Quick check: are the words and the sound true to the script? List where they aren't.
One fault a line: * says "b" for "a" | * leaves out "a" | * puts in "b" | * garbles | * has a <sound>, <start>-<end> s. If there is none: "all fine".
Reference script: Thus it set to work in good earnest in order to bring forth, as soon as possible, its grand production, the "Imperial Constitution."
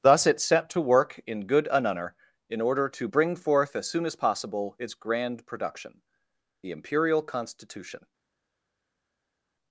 * says "anunner" for "earnest"